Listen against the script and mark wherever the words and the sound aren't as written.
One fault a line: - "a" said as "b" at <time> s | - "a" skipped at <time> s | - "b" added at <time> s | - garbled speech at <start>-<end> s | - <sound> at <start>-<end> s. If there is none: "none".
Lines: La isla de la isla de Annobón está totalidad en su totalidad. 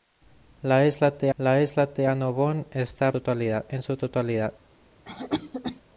- cough at 5.1-5.8 s